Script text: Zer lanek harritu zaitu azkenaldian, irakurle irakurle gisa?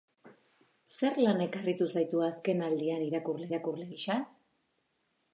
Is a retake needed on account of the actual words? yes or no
no